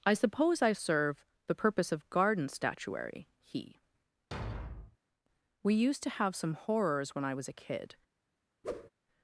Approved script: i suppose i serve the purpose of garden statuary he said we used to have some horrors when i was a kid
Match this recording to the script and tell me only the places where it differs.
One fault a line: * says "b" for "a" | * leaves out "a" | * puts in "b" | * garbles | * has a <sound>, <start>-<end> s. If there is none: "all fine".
* leaves out "said"
* has a thud, 4.3-5.0 s
* has a whoosh, 8.6-8.9 s